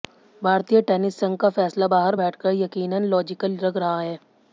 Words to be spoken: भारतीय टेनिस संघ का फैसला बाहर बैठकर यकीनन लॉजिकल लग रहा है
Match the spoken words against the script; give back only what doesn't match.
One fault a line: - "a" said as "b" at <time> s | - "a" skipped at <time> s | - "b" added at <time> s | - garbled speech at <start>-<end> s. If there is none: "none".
none